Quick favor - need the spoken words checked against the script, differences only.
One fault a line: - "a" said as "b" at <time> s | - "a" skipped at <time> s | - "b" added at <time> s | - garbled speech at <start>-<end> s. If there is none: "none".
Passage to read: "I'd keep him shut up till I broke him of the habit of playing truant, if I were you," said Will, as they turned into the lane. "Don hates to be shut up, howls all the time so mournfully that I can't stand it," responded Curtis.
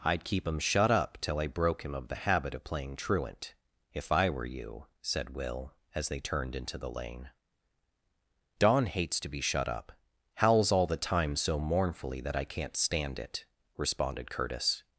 none